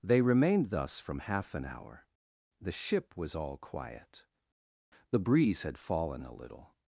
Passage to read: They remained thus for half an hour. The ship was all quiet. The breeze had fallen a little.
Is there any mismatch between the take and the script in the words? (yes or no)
yes